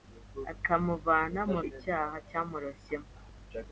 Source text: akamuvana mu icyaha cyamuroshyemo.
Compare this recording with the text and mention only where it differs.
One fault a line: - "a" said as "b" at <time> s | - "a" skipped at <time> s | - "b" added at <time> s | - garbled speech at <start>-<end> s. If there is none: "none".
none